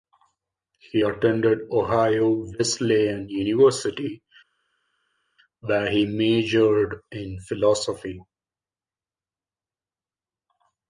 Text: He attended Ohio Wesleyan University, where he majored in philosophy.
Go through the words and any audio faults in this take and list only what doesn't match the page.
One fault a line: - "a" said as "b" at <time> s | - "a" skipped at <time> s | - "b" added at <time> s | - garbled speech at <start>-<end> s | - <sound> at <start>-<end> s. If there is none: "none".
none